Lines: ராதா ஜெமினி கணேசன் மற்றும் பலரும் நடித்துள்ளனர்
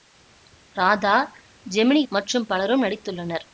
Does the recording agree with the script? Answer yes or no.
no